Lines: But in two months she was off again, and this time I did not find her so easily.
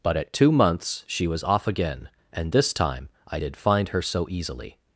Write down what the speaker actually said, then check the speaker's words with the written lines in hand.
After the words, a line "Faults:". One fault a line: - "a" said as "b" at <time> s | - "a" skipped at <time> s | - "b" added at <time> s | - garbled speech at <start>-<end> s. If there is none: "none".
But at two months she was off again, and this time I did find her so easily.
Faults:
- "in" said as "at" at 0.2 s
- "not" skipped at 3.6 s